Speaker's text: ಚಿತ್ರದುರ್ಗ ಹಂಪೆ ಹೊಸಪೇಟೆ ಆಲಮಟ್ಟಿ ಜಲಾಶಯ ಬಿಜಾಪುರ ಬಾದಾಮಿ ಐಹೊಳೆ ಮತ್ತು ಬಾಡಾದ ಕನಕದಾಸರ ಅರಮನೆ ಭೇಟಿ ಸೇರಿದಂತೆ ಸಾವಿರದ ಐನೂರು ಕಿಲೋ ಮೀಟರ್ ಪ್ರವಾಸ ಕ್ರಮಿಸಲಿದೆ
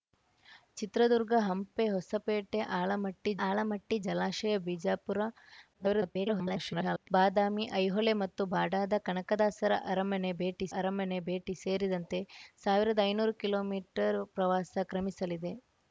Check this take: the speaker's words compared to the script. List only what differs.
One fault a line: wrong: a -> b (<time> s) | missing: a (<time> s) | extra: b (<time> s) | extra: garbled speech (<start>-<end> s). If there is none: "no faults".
extra: ಆಲಮಟ್ಟಿ (3.5 s)
extra: garbled speech (5.7-7.1 s)
extra: ಅರಮನೆ ಭೇಟಿ (10.8 s)